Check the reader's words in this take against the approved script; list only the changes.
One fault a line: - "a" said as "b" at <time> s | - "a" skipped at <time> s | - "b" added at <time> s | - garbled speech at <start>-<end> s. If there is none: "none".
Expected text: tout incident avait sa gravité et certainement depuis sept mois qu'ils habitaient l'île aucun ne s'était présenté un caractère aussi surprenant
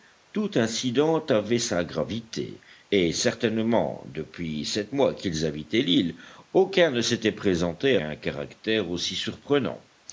none